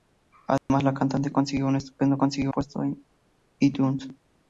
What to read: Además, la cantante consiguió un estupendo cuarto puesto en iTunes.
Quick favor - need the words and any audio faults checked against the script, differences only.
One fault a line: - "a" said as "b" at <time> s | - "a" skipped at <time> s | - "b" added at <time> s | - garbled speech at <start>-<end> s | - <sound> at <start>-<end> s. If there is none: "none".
- dropout at 0.6-0.7 s
- "cuarto" said as "consiguió" at 2.2 s